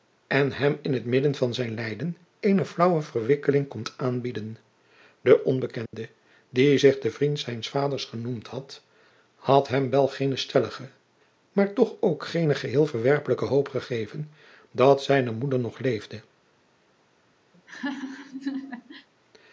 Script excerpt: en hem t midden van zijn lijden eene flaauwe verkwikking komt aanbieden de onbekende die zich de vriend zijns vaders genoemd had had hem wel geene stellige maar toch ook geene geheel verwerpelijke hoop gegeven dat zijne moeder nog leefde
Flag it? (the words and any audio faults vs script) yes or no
yes